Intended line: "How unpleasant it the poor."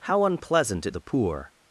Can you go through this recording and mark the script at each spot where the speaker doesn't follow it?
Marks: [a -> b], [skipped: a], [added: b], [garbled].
"How unpleasant it the poor."